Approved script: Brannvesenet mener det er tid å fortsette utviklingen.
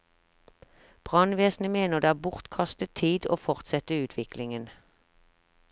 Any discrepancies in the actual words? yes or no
yes